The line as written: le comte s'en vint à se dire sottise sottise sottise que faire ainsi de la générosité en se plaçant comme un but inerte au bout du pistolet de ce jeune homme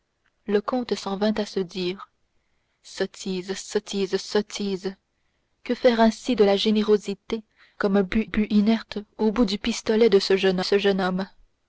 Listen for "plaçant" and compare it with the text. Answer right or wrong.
wrong